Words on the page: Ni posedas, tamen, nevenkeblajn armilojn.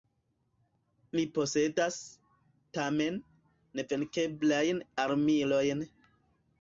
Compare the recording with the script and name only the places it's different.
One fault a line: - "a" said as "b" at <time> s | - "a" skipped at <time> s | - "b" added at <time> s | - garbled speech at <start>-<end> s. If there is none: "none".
none